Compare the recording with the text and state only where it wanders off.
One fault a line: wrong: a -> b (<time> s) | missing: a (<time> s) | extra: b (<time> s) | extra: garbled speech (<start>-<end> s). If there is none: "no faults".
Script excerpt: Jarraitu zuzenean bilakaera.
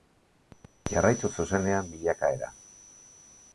no faults